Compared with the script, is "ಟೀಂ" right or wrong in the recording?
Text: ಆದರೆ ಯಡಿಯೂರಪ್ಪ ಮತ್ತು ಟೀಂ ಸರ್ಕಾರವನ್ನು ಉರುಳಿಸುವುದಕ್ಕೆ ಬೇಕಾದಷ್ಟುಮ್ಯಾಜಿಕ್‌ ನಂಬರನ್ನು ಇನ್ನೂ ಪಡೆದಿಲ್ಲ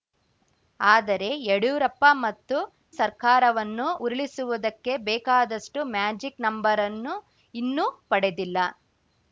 wrong